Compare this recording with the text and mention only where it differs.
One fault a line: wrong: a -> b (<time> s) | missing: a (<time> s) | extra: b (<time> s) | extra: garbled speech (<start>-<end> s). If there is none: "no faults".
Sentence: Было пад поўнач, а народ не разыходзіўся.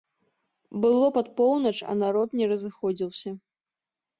no faults